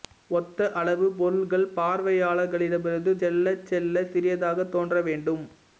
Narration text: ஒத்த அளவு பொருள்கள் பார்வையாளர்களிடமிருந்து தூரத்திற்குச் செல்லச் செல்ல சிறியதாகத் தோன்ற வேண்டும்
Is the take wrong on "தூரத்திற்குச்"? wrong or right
wrong